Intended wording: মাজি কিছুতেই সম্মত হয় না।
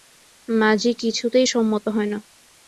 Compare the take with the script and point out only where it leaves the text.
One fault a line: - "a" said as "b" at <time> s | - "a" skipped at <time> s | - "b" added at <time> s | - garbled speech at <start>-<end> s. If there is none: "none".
none